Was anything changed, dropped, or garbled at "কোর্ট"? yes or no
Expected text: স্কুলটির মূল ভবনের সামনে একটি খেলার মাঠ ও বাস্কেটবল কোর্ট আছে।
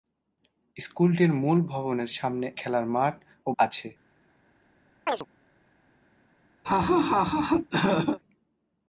yes